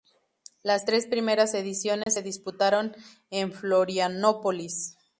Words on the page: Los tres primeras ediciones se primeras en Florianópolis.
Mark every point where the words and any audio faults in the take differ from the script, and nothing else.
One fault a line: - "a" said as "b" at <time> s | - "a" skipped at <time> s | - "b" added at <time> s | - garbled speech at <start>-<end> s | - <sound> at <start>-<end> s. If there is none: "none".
- "Los" said as "Las" at 0.6 s
- dropout at 2.0-2.1 s
- "primeras" said as "disputaron" at 2.2 s